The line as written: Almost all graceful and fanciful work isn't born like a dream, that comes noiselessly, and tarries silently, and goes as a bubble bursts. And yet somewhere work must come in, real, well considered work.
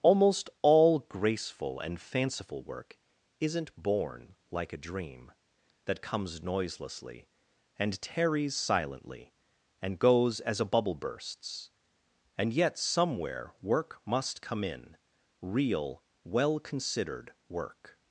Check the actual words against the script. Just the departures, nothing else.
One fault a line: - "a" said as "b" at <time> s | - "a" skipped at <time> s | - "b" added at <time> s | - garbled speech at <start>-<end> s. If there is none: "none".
none